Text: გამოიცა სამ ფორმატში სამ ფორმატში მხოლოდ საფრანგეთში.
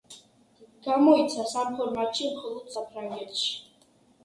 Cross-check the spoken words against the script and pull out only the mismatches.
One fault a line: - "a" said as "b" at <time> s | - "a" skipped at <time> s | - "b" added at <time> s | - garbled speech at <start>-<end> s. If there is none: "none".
- "სამ ფორმატში" skipped at 2.3 s